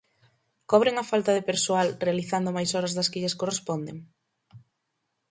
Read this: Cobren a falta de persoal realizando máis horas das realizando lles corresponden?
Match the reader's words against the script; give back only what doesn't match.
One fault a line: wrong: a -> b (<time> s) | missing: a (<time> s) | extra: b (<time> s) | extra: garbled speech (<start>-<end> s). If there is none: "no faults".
wrong: realizando -> que (3.1 s)